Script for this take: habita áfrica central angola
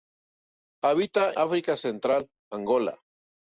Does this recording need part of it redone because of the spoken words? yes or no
no